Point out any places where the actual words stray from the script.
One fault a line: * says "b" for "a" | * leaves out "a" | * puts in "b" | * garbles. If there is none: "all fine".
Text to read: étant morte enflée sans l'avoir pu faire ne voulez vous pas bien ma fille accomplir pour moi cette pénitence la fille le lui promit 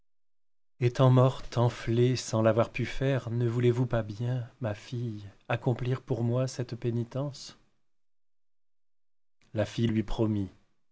* leaves out "le"